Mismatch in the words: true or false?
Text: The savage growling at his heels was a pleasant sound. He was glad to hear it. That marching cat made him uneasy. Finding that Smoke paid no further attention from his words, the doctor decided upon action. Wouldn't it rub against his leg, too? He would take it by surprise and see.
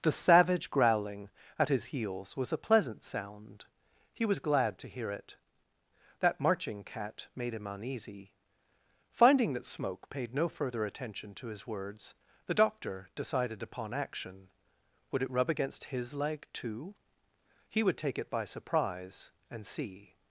true